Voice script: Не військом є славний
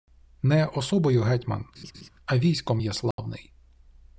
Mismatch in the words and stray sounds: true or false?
true